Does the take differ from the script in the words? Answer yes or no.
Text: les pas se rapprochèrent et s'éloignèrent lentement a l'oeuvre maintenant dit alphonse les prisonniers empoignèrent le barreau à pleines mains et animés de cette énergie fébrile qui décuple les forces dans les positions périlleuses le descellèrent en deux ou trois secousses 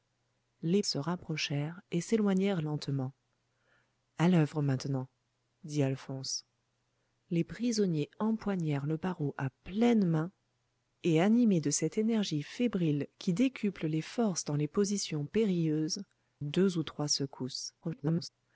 yes